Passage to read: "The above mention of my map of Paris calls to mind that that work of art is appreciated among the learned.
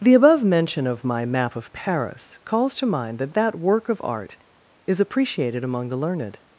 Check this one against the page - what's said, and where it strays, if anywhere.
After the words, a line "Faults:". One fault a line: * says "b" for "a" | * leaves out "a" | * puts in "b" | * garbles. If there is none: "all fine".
"The above mention of my map of Paris calls to mind that that work of art is appreciated among the learned.
Faults:
all fine